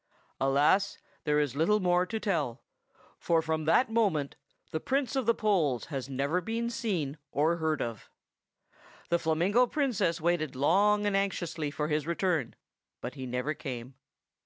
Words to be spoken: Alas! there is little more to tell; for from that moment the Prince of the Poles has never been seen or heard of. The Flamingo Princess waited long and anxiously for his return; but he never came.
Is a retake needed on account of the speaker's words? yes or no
no